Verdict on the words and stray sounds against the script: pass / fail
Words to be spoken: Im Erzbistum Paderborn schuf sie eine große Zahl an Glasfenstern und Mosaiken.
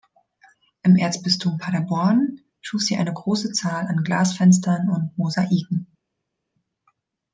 pass